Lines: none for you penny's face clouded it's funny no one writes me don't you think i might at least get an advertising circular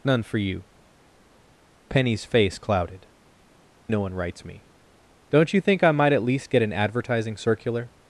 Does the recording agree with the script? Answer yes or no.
no